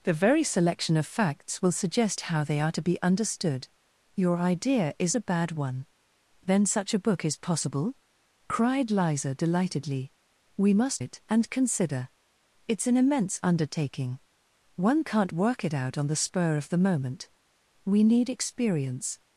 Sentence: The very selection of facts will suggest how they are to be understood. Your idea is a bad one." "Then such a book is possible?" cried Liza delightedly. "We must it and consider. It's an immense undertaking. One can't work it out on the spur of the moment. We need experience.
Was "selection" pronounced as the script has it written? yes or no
yes